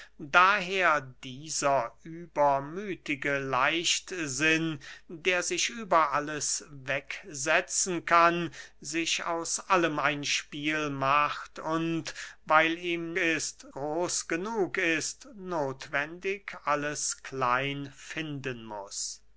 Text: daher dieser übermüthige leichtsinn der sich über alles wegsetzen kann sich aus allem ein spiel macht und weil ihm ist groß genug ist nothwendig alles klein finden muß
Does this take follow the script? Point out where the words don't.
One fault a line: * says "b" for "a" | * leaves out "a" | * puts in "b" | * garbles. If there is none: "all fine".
all fine